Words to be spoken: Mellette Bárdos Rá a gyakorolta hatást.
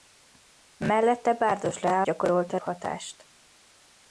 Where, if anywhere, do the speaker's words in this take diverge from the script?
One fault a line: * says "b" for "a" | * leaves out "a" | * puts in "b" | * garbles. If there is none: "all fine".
all fine